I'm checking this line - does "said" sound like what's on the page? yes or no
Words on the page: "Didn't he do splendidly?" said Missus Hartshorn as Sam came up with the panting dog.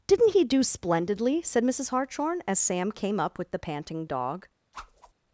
yes